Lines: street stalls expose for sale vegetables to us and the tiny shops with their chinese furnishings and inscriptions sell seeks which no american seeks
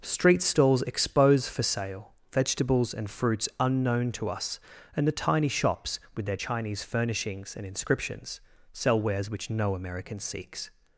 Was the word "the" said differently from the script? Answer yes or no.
no